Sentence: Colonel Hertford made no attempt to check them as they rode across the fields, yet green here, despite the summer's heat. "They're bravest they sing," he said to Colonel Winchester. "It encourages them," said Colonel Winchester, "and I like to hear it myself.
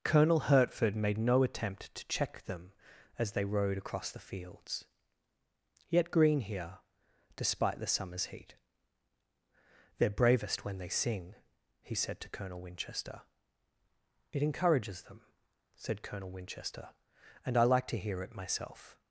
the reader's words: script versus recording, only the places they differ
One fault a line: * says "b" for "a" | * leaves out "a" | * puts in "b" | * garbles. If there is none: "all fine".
* puts in "when"